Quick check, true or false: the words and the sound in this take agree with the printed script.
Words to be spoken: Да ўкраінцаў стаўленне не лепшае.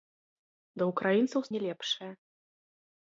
false